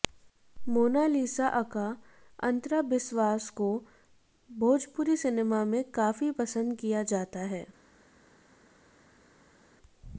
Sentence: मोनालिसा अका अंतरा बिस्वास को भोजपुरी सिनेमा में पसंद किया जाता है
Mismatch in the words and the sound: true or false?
true